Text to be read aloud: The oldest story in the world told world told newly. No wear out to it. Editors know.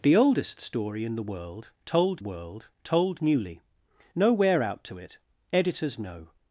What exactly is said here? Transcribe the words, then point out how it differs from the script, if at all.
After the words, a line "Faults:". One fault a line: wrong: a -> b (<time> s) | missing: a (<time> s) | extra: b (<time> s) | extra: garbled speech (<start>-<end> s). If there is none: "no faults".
The oldest story in the world told world told newly. No wear out to it. Editors know.
Faults:
no faults